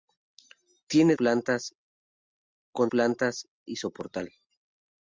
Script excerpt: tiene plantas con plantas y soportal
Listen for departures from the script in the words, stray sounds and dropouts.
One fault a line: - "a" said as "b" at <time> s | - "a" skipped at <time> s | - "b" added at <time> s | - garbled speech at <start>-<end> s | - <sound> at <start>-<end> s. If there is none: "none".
none